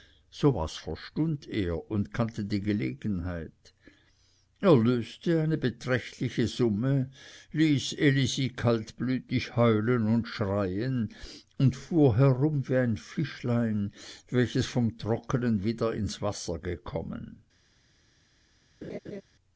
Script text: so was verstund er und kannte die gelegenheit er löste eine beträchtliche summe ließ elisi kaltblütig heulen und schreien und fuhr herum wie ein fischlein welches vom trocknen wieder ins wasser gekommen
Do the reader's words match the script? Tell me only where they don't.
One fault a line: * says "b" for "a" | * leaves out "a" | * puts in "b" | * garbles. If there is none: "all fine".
all fine